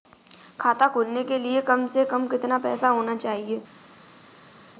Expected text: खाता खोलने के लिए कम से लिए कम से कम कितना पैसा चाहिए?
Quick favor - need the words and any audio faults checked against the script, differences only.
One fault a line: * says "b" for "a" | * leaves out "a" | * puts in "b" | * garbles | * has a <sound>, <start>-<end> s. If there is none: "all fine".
* leaves out "लिए"
* leaves out "से कम"
* puts in "होना"